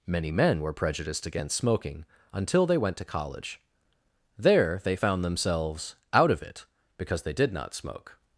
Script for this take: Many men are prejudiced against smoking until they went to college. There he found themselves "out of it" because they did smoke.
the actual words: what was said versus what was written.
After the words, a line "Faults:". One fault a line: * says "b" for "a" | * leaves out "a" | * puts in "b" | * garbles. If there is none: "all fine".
Many men were prejudiced against smoking until they went to college. There they found themselves "out of it" because they did not smoke.
Faults:
* says "were" for "are"
* says "they" for "he"
* puts in "not"